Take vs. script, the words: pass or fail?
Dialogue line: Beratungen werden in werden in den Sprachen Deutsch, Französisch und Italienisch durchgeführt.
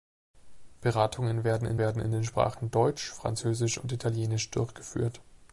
pass